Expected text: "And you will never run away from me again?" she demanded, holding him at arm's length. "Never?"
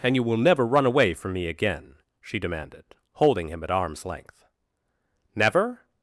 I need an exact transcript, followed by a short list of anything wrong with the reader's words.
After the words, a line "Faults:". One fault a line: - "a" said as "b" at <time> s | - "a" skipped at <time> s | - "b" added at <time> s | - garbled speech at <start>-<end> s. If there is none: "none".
"And you will never run away from me again?" she demanded, holding him at arm's length. "Never?"
Faults:
none